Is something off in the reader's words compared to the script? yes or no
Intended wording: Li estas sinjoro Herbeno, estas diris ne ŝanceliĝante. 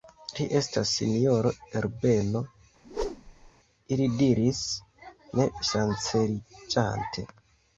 yes